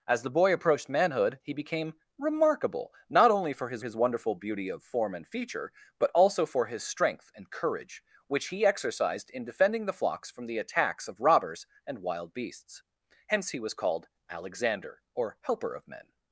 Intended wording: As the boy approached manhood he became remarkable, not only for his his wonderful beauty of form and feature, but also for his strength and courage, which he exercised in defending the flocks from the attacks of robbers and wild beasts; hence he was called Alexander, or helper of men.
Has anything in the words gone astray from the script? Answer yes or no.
no